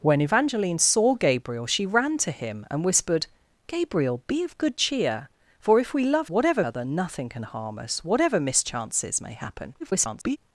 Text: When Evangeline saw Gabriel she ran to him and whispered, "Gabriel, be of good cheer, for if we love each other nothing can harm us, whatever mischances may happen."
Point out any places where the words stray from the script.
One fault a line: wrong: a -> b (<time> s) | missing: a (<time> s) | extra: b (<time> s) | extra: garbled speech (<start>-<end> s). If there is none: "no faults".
wrong: each -> whatever (6.3 s)
extra: garbled speech (9.8-10.4 s)